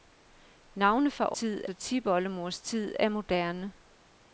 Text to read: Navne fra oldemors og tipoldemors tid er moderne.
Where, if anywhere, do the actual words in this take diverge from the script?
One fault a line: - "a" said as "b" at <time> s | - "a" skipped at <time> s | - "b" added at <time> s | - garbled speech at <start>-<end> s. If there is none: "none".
- "oldemors" said as "tid" at 1.3 s